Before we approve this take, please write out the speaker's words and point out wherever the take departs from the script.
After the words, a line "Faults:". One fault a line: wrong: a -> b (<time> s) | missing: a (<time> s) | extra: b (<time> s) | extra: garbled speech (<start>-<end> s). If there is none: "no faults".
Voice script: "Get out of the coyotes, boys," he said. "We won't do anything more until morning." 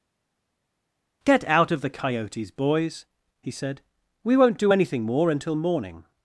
"Get out of the coyotes, boys," he said. "We won't do anything more until morning."
Faults:
no faults